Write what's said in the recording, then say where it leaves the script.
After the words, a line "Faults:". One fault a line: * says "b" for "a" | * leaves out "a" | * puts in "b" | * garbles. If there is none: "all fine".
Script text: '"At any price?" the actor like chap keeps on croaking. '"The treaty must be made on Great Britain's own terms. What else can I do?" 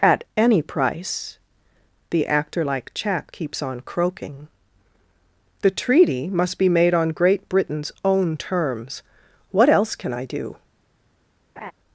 '"At any price?" the actor like chap keeps on croaking. '"The treaty must be made on Great Britain's own terms. What else can I do?"
Faults:
all fine